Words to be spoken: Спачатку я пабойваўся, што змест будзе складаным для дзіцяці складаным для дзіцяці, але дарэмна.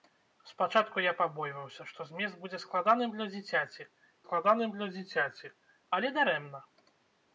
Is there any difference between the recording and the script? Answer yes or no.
no